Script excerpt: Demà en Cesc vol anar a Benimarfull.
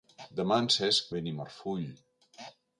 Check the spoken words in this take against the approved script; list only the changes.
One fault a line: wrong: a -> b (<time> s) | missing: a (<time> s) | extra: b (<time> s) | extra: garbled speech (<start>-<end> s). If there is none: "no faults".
missing: vol anar a (1.1 s)